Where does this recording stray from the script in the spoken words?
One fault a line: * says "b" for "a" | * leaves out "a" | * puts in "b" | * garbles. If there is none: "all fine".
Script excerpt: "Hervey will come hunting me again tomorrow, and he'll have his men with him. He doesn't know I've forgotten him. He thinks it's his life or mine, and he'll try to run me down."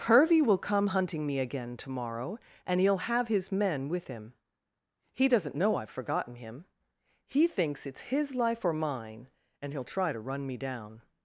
all fine